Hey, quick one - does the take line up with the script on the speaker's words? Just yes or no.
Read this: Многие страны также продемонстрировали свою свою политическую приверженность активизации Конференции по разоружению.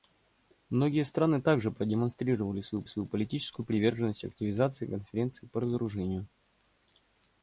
yes